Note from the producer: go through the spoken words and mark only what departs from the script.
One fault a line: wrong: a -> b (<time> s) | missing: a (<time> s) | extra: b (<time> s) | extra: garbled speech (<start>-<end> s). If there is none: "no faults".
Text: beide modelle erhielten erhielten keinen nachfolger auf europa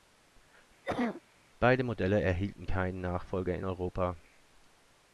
missing: erhielten (2.7 s)
wrong: auf -> in (3.6 s)